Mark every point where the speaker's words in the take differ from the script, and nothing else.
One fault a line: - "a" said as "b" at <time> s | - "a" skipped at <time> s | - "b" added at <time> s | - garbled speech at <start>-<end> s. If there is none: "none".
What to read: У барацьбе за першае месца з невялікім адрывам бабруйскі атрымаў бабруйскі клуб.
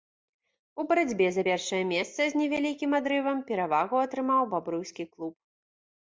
- "бабруйскі" said as "перавагу" at 3.5 s